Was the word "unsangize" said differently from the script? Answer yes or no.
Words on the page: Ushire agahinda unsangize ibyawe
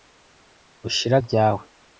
yes